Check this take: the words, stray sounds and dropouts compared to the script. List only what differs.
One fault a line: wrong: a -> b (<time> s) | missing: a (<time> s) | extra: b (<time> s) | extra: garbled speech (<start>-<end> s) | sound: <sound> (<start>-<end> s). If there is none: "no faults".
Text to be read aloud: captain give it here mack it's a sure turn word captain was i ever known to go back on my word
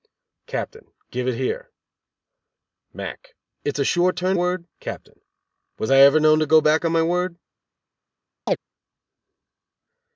sound: chirp (8.5-8.6 s)